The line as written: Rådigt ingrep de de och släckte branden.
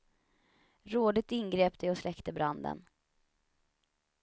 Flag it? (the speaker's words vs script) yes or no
yes